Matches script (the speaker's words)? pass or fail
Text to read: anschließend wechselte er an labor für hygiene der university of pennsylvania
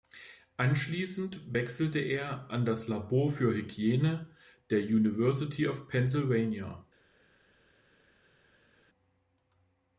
fail